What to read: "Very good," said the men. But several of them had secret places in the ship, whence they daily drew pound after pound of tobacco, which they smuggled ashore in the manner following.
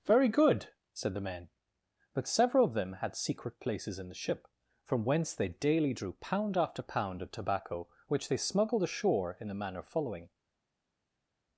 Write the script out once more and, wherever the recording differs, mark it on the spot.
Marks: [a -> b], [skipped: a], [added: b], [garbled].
"Very good," said the men. But several of them had secret places in the ship, [added: from] whence they daily drew pound after pound of tobacco, which they smuggled ashore in the manner following.